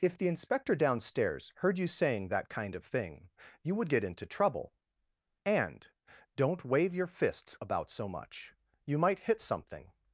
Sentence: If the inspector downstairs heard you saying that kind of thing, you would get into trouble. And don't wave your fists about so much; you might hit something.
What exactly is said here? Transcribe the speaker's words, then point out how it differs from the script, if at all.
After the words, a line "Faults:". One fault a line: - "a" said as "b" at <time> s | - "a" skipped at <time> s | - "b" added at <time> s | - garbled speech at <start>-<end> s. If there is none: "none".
If the inspector downstairs heard you saying that kind of thing, you would get into trouble. And don't wave your fists about so much; you might hit something.
Faults:
none